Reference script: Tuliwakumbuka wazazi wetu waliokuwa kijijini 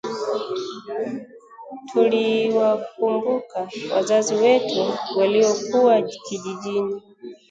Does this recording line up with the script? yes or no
yes